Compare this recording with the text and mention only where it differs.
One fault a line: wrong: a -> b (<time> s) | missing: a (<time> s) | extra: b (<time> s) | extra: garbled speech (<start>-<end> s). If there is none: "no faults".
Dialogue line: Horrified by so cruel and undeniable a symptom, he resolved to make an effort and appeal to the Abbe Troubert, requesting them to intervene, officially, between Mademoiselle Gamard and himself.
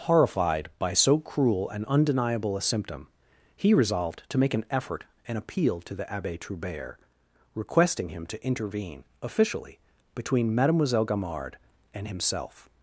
wrong: them -> him (8.1 s)